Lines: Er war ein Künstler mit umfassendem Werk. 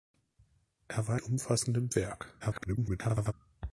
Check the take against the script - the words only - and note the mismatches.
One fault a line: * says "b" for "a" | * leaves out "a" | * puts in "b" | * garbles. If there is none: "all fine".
* leaves out "ein Künstler mit"
* garbles